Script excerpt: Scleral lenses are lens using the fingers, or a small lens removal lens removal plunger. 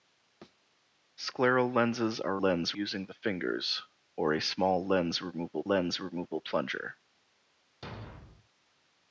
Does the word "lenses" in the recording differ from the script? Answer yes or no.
no